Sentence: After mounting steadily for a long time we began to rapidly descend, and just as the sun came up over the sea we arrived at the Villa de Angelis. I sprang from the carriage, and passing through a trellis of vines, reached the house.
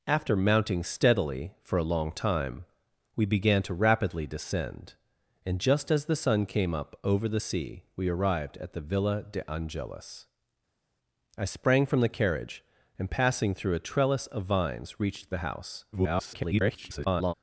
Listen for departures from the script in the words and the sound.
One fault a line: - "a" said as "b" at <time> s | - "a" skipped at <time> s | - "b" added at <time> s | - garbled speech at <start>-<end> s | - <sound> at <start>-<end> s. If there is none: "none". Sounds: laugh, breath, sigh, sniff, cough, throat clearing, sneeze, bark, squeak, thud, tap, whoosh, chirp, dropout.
- garbled speech at 15.9-17.3 s